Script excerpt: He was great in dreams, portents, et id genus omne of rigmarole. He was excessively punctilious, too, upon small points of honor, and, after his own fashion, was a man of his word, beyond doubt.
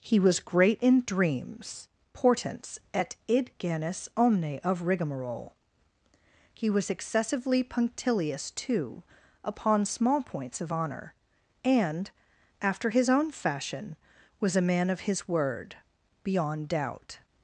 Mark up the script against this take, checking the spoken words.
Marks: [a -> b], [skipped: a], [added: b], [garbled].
He was great in dreams, portents, et id genus omne of rigmarole. He was excessively punctilious, too, upon small points of honor, and, after his own fashion, was a man of his word, beyond doubt.